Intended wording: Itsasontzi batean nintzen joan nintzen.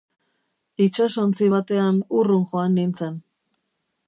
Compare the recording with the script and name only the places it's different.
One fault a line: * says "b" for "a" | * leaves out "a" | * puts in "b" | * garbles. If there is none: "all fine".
* says "urrun" for "nintzen"